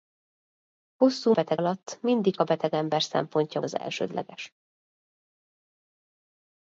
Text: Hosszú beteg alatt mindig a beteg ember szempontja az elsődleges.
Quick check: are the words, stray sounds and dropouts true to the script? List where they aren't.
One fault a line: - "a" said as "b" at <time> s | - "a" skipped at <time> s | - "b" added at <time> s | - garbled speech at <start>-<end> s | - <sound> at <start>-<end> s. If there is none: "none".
none